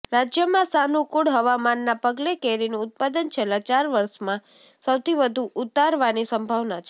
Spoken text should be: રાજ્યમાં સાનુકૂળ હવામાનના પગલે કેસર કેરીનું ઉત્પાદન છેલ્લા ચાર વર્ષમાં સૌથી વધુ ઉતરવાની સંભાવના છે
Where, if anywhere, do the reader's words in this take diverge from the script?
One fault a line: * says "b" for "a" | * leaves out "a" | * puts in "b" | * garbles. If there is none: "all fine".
* leaves out "કેસર"